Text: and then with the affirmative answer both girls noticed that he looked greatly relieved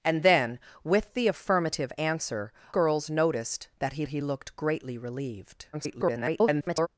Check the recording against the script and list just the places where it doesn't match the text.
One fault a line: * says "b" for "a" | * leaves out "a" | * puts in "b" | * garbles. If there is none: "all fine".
* leaves out "both"
* puts in "he"
* garbles